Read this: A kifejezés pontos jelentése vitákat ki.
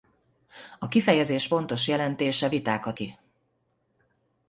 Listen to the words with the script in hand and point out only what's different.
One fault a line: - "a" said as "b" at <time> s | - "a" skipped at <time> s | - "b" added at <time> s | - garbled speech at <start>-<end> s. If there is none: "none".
none